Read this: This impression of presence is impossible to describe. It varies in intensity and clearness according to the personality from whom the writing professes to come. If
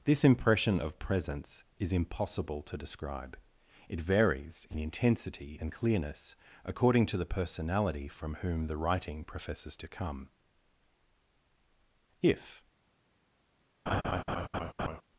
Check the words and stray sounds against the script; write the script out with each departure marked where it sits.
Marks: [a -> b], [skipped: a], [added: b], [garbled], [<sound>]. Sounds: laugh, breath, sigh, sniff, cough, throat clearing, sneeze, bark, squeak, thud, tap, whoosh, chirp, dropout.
This impression of presence is impossible to describe. It varies in intensity and clearness according to the personality from whom the writing professes to come. If [laugh]